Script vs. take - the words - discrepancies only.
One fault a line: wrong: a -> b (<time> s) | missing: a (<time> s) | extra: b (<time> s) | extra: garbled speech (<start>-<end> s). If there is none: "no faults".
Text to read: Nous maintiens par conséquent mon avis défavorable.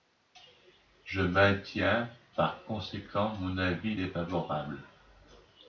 wrong: Nous -> Je (1.1 s)